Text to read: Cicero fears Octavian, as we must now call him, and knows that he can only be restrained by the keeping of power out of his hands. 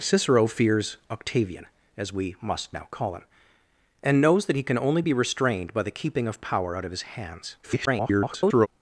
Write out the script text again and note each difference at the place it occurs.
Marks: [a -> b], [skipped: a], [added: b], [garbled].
Cicero fears Octavian, as we must now call him, and knows that he can only be restrained by the keeping of power out of his hands. [garbled]